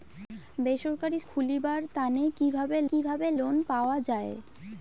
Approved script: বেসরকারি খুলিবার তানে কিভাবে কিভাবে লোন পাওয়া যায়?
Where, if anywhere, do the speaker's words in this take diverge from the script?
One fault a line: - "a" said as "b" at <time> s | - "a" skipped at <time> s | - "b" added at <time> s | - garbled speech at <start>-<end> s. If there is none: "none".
none